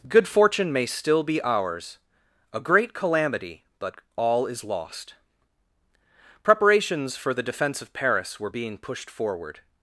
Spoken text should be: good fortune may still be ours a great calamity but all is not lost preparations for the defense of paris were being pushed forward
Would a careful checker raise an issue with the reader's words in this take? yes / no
yes